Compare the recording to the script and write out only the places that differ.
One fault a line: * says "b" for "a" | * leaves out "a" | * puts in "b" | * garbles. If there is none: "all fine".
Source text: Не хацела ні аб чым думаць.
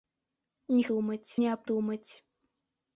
* says "думаць" for "хацела"
* leaves out "чым"